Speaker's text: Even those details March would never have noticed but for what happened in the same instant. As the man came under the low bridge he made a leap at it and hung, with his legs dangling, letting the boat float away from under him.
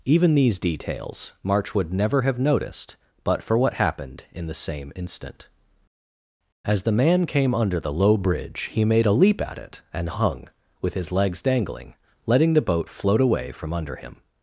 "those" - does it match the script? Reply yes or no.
no